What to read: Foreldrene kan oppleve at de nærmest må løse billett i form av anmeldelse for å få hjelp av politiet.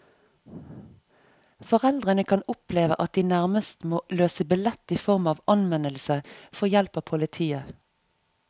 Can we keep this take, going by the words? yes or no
no